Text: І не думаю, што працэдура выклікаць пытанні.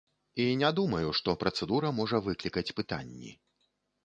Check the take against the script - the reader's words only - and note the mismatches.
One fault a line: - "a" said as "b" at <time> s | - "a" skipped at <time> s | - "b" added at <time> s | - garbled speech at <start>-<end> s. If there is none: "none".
- "можа" added at 2.0 s